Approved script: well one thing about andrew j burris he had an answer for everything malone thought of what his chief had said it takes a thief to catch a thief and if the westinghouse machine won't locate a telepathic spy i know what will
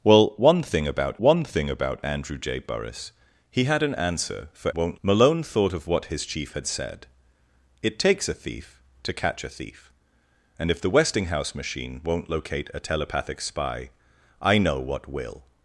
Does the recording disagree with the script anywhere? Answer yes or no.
yes